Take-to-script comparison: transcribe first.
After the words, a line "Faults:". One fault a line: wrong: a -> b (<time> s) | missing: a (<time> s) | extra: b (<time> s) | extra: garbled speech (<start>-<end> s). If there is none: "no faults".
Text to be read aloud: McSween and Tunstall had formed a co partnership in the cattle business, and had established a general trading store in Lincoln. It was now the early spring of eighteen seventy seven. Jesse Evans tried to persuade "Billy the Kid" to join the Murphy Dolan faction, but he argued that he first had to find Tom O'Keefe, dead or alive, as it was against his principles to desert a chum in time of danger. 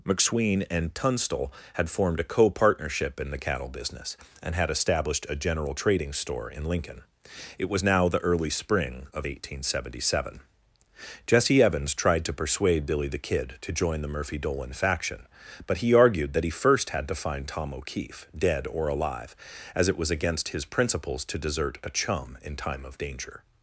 McSween and Tunstall had formed a co partnership in the cattle business, and had established a general trading store in Lincoln. It was now the early spring of eighteen seventy seven. Jesse Evans tried to persuade "Billy the Kid" to join the Murphy Dolan faction, but he argued that he first had to find Tom O'Keefe, dead or alive, as it was against his principles to desert a chum in time of danger.
Faults:
no faults